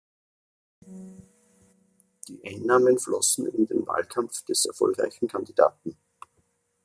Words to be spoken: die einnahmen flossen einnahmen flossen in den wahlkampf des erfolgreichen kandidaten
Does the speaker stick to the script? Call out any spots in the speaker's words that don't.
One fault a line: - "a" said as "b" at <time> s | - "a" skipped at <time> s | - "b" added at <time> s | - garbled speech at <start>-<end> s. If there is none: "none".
- "einnahmen flossen" skipped at 3.5 s